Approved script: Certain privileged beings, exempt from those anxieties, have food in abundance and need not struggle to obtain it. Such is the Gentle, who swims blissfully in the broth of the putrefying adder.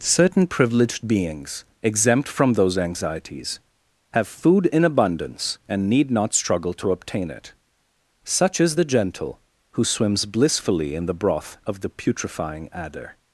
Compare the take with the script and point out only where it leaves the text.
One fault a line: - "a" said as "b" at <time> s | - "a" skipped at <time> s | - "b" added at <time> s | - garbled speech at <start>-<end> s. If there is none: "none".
none